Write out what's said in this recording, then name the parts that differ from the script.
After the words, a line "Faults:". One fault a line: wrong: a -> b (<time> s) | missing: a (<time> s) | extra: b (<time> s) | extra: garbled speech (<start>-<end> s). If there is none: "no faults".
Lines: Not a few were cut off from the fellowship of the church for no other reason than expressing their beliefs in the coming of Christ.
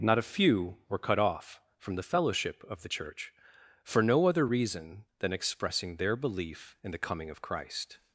Not a few were cut off from the fellowship of the church for no other reason than expressing their belief in the coming of Christ.
Faults:
wrong: beliefs -> belief (6.2 s)